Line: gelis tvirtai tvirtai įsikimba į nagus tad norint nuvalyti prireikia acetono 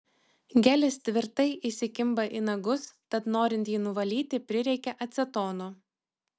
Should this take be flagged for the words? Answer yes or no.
yes